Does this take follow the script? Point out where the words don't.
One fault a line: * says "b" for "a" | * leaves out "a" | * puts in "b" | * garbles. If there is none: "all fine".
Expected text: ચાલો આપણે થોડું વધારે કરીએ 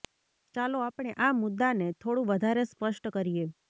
* puts in "આ મુદ્દાને"
* puts in "સ્પષ્ટ"